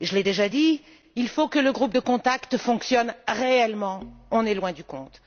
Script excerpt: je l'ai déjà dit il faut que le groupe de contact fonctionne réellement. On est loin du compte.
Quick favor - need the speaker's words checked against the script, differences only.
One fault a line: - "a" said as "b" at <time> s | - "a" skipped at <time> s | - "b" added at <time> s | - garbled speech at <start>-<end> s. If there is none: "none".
none